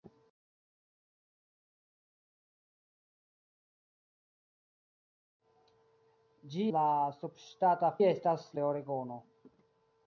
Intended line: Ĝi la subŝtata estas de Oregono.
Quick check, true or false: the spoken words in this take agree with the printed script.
true